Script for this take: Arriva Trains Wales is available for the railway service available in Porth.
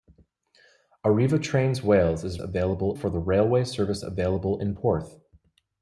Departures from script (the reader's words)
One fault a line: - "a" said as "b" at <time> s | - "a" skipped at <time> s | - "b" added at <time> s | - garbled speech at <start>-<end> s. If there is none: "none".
none